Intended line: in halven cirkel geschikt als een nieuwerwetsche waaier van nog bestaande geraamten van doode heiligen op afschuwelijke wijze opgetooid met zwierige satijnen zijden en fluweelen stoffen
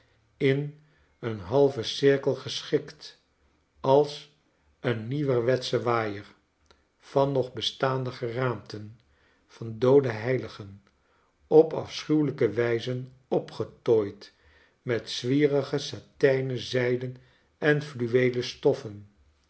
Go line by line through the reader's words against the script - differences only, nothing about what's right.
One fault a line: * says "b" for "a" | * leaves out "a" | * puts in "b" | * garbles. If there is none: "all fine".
* puts in "een"